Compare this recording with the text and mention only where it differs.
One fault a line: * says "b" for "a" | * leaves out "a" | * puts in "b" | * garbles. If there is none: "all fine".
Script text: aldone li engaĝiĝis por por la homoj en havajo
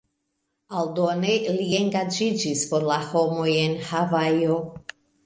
* leaves out "por"